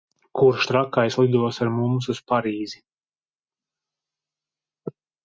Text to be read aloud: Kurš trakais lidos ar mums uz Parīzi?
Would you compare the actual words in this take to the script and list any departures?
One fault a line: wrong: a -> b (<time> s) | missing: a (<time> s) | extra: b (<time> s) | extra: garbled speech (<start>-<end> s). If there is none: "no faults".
no faults